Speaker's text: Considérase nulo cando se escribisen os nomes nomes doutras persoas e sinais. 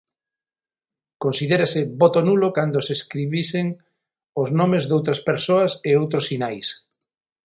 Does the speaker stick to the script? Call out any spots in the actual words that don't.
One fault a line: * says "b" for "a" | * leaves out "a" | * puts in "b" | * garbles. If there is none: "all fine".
* puts in "voto"
* leaves out "nomes"
* puts in "outros"